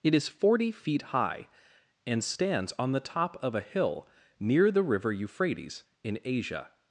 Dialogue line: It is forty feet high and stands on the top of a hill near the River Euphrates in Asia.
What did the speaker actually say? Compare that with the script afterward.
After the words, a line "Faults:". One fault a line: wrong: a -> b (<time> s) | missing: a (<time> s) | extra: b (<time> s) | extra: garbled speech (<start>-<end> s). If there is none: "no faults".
It is forty feet high and stands on the top of a hill near the River Euphrates in Asia.
Faults:
no faults